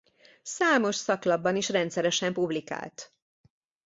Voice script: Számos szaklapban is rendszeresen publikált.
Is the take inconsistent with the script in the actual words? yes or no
no